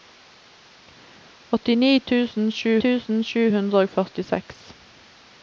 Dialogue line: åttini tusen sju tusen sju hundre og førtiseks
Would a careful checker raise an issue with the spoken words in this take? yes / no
no